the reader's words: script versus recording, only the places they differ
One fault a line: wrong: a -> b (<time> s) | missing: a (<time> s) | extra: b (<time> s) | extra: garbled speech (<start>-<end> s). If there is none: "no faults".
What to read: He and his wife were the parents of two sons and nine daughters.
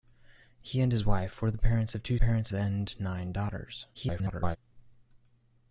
wrong: sons -> parents (2.2 s)
extra: garbled speech (3.9-4.6 s)